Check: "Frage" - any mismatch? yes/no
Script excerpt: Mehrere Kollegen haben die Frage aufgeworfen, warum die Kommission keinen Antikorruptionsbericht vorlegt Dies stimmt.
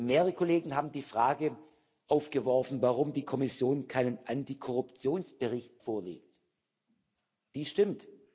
no